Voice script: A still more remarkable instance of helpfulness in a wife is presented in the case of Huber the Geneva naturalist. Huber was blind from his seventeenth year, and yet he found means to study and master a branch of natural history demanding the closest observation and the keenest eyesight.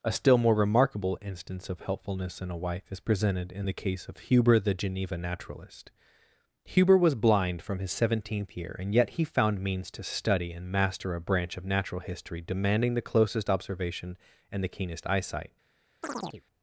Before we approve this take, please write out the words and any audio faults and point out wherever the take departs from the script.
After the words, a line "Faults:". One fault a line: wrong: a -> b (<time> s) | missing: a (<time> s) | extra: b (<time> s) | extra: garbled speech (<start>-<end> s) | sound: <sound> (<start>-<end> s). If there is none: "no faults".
A still more remarkable instance of helpfulness in a wife is presented in the case of Huber the Geneva naturalist. Huber was blind from his seventeenth year, and yet he found means to study and master a branch of natural history demanding the closest observation and the keenest eyesight.
Faults:
sound: chirp (16.0-16.4 s)